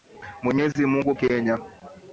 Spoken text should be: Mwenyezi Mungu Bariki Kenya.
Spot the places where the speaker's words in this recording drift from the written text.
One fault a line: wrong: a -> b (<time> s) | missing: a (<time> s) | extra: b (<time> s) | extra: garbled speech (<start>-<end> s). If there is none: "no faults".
missing: Bariki (1.1 s)